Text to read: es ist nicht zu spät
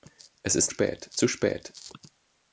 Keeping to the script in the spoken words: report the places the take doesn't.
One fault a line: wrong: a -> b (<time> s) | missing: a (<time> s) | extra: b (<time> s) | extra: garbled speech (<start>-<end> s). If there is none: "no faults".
wrong: nicht -> spät (0.7 s)